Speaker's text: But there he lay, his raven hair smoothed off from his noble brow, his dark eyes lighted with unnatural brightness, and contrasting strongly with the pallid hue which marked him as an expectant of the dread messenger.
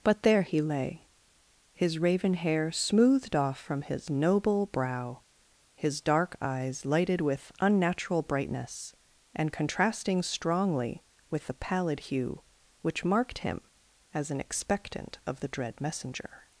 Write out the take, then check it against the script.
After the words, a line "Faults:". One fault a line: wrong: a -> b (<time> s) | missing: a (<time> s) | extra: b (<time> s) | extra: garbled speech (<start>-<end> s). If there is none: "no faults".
But there he lay, his raven hair smoothed off from his noble brow, his dark eyes lighted with unnatural brightness, and contrasting strongly with the pallid hue which marked him as an expectant of the dread messenger.
Faults:
no faults